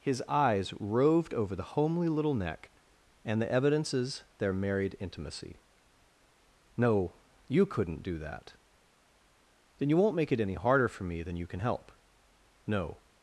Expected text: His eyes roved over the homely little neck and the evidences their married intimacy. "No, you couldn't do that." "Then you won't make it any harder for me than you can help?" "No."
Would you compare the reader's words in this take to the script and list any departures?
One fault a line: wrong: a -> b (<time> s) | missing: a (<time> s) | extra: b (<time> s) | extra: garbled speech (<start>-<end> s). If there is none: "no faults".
no faults